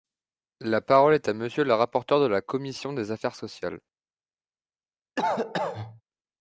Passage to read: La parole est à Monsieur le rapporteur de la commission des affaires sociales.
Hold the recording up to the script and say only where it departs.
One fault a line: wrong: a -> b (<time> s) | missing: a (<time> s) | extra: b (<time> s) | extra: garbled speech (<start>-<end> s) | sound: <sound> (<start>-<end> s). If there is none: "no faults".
sound: cough (5.2-6.0 s)